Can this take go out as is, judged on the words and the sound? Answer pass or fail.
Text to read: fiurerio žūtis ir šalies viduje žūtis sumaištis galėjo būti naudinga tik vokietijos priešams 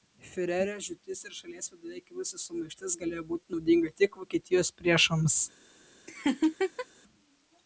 fail